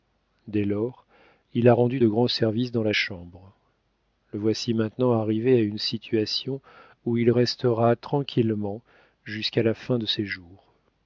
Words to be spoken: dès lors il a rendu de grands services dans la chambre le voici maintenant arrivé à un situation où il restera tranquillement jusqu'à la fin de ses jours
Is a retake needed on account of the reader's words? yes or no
yes